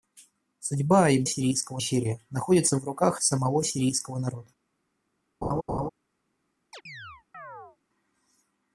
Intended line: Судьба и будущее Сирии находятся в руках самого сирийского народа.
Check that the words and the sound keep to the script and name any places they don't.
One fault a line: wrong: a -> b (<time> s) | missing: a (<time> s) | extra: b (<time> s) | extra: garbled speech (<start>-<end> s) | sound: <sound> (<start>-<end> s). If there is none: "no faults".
wrong: будущее -> сирийского (1.3 s)
sound: laugh (5.4-5.9 s)
sound: chirp (6.7-7.8 s)